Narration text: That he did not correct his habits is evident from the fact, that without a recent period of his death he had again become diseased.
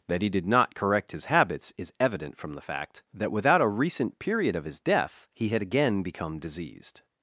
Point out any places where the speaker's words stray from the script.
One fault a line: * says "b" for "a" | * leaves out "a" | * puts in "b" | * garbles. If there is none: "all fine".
all fine